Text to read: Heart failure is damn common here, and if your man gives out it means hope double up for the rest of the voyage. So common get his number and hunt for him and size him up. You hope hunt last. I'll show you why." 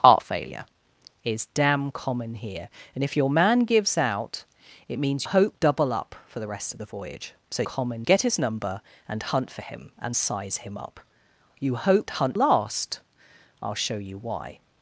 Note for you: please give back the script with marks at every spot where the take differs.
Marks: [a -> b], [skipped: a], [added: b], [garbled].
Heart failure is damn common here, and if your man gives out it means hope double up for the rest of the voyage. So common get his number and hunt for him and size him up. You hope hunt last. I'll show you why."